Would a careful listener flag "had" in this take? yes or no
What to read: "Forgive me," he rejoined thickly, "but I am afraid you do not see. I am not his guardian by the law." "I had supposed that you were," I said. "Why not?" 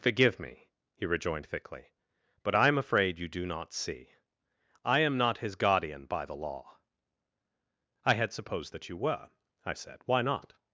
no